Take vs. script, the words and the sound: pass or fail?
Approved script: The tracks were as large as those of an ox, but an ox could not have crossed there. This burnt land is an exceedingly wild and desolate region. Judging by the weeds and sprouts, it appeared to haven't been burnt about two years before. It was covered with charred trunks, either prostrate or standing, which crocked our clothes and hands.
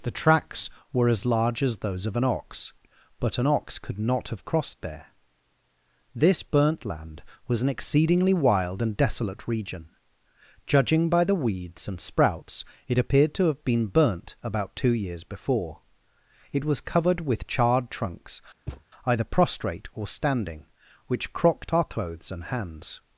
fail